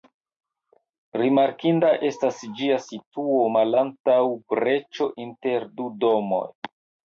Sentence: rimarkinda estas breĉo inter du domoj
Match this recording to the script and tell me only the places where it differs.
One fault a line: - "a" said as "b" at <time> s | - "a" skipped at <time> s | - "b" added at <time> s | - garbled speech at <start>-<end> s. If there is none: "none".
- "ĝia situo malantaŭ" added at 2.6 s